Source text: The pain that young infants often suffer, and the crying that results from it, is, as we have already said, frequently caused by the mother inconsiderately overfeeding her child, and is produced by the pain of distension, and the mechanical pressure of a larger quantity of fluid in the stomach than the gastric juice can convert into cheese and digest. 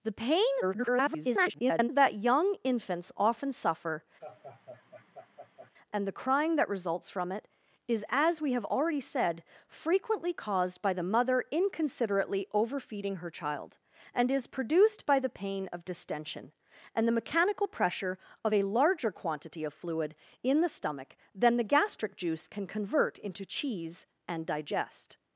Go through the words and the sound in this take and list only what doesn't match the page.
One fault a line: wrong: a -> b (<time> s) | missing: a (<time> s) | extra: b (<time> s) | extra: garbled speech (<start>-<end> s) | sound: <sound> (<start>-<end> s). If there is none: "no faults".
extra: garbled speech (0.6-1.9 s)
sound: laugh (4.2-5.7 s)